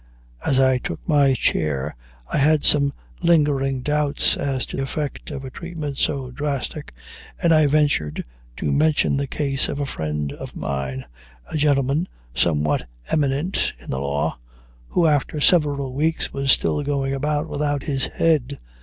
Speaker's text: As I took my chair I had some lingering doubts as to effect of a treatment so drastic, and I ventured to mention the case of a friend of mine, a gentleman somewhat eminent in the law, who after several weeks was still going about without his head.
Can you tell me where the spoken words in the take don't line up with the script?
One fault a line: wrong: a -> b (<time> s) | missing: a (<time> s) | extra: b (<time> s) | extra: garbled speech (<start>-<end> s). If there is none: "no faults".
no faults